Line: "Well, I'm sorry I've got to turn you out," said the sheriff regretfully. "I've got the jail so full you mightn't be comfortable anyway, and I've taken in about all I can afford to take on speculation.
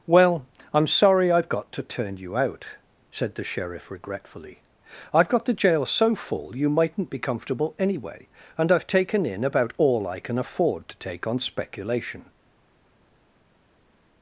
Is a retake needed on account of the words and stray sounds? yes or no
no